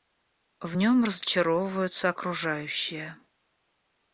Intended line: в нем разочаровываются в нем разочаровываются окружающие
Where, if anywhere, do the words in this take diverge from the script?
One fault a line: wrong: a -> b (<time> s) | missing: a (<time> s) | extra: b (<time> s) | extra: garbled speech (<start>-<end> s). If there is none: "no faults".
missing: в нем разочаровываются (2.1 s)